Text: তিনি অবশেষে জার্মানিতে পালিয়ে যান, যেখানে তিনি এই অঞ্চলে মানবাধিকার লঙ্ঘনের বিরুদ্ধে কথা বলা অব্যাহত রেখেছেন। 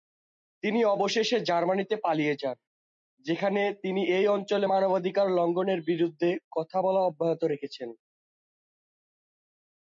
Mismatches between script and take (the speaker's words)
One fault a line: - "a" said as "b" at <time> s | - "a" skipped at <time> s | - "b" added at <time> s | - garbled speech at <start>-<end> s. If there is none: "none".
none